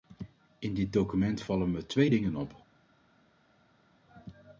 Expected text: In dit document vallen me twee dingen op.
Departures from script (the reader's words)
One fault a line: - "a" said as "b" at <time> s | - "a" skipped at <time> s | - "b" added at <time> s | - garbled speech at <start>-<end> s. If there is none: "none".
none